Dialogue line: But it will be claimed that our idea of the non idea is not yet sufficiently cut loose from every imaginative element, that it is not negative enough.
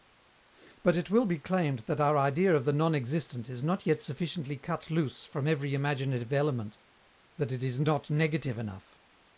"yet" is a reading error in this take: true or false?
false